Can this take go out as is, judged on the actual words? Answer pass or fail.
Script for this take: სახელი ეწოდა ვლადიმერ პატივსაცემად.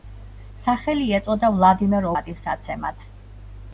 pass